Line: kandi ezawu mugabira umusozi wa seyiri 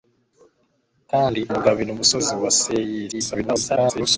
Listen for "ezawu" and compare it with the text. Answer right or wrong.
wrong